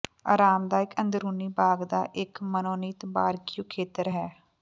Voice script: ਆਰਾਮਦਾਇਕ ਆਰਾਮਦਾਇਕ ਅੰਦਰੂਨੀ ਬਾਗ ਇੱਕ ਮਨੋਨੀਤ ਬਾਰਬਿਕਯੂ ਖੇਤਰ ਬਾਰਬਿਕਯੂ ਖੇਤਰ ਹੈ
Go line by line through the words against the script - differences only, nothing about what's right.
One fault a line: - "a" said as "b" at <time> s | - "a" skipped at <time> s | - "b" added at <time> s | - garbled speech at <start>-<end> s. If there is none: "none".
- "ਆਰਾਮਦਾਇਕ" skipped at 0.9 s
- "ਦਾ" added at 1.9 s
- "ਬਾਰਬਿਕਯੂ ਖੇਤਰ" skipped at 4.1 s